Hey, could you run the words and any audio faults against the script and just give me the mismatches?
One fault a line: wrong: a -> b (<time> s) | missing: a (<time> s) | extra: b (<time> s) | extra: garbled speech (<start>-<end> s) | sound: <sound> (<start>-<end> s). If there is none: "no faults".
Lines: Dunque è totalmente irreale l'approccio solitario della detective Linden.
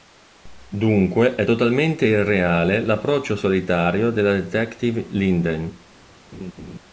sound: laugh (6.3-6.8 s)